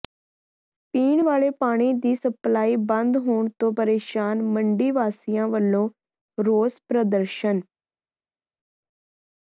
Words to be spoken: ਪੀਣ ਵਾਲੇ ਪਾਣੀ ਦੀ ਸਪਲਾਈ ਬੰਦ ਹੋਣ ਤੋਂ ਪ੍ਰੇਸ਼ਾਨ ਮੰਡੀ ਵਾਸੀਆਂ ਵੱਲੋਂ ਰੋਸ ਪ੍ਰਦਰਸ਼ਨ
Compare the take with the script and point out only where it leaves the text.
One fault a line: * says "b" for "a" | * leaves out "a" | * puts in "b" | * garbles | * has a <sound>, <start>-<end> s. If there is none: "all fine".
all fine